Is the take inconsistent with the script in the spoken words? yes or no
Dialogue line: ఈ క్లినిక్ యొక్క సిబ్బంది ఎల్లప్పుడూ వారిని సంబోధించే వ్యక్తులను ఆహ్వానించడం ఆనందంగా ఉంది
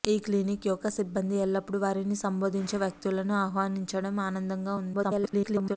yes